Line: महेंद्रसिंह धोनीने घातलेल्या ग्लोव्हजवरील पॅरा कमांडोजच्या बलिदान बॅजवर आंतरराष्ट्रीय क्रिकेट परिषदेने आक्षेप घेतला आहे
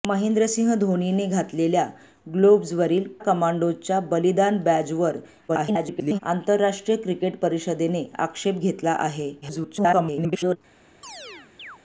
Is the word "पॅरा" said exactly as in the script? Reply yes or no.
no